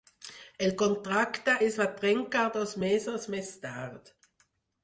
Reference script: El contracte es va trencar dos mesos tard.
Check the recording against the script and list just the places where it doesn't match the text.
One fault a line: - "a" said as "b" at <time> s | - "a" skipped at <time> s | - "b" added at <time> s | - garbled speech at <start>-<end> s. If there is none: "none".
- "més" added at 3.4 s